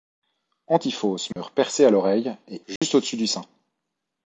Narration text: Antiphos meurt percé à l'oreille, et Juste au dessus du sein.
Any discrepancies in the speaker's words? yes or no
no